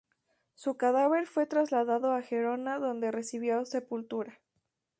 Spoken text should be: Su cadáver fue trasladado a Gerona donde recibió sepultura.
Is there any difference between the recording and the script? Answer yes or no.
no